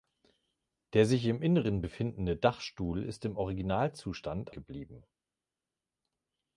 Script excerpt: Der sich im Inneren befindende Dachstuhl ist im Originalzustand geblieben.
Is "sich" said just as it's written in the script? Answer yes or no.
yes